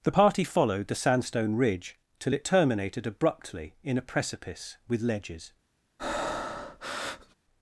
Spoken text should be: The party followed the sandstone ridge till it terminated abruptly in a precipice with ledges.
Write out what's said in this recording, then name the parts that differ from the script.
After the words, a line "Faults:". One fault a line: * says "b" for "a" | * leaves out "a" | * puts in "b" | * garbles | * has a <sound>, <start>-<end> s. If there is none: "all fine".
The party followed the sandstone ridge till it terminated abruptly in a precipice with ledges.
Faults:
* has a breath, 6.0-7.4 s